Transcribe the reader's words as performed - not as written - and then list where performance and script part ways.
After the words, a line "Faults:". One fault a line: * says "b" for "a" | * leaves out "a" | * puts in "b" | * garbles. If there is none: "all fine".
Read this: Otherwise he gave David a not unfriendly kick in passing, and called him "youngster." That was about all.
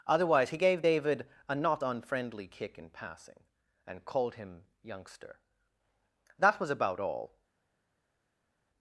Otherwise he gave David a not unfriendly kick in passing, and called him "youngster." That was about all.
Faults:
all fine